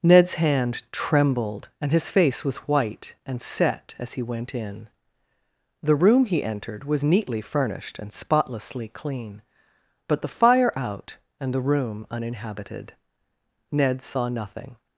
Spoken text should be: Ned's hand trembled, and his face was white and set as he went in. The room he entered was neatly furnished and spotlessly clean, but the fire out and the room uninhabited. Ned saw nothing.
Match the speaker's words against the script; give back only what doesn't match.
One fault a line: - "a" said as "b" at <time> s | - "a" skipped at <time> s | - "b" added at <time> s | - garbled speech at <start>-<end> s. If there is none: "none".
none